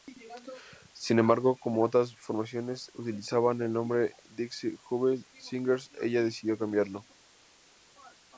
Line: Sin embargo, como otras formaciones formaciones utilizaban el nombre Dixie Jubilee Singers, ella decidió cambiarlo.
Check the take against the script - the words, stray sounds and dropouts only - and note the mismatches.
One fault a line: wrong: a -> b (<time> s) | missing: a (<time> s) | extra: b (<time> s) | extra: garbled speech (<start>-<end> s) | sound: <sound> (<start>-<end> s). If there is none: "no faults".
missing: formaciones (2.9 s)